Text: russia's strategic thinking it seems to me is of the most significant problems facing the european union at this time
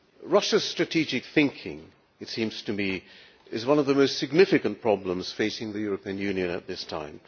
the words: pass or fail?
fail